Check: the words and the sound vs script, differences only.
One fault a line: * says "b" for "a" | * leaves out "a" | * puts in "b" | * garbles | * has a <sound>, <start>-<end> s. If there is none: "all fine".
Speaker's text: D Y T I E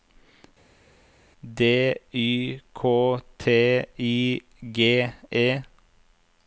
* puts in "K"
* puts in "G"